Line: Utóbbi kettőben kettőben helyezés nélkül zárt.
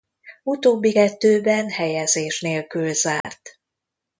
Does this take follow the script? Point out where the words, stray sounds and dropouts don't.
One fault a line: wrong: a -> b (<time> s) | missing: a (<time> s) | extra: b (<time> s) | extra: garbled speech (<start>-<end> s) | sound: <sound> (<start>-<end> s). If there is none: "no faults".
missing: kettőben (1.7 s)
sound: dropout (3.2-3.2 s)